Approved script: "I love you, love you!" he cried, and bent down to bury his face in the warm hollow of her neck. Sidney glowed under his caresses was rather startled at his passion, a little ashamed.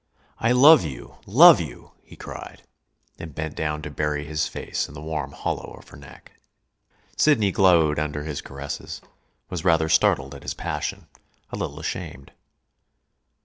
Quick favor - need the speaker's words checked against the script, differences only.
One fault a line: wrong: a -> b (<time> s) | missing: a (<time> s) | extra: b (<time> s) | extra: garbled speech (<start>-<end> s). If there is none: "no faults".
no faults